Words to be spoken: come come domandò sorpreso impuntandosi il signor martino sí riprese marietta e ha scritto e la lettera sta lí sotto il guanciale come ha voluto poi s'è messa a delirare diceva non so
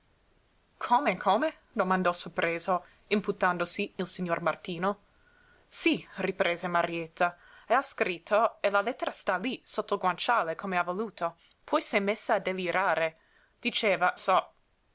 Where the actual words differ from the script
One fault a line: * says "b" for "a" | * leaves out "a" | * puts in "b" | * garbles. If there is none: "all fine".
* leaves out "non"